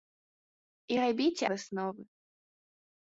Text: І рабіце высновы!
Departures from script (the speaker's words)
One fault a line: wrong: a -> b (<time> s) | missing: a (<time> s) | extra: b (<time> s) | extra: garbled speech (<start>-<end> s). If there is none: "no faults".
no faults